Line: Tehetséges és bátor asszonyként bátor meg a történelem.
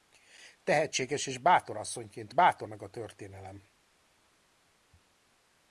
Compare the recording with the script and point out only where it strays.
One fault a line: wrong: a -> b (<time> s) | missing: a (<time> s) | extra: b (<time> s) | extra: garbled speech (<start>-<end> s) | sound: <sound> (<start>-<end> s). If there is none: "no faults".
no faults